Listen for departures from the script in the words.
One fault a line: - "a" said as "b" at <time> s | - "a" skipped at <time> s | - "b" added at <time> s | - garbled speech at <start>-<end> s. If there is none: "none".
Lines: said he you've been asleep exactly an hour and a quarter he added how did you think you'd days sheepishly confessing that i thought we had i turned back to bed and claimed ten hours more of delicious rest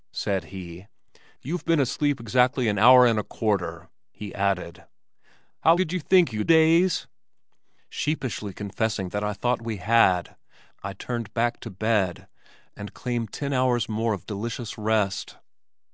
none